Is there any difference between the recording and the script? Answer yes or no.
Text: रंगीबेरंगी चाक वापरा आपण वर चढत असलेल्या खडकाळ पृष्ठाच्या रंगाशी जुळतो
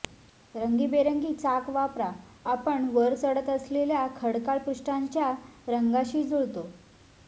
no